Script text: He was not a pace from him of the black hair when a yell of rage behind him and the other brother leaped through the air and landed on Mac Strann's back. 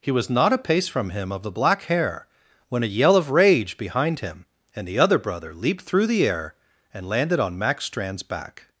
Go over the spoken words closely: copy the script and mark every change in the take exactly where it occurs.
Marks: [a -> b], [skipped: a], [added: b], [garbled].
He was not a pace from him of the black hair when a yell of rage behind him and the other brother leaped through the air and landed on Mac Strann's back.